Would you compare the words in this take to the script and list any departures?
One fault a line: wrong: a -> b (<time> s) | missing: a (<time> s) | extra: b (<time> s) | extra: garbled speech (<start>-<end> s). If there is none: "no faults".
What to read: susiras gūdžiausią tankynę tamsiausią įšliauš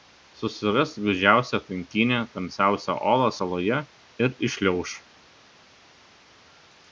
extra: olą saloje ir (3.1 s)